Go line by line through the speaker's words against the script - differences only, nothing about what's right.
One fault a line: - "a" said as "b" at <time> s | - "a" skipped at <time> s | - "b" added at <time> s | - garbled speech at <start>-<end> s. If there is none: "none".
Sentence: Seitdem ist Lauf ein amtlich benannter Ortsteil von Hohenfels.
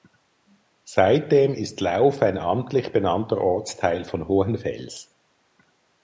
none